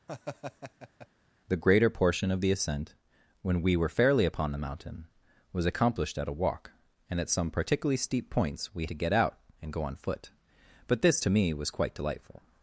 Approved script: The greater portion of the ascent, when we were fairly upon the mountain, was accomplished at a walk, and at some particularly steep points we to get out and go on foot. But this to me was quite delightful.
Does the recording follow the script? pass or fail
pass